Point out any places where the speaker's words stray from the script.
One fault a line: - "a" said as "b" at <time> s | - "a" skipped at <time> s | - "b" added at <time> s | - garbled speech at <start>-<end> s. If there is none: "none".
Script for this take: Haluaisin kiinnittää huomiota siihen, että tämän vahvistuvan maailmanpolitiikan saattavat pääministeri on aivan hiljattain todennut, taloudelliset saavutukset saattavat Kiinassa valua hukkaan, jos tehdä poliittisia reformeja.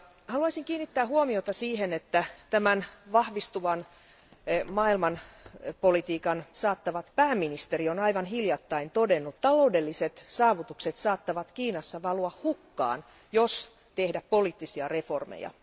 none